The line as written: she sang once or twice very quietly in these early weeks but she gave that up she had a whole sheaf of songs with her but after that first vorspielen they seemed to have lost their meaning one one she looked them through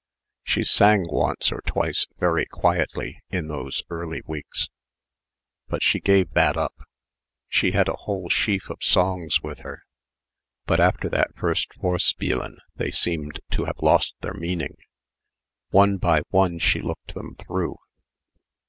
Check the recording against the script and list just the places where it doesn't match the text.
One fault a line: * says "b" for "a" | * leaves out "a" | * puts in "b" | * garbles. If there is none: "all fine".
* says "those" for "these"
* puts in "by"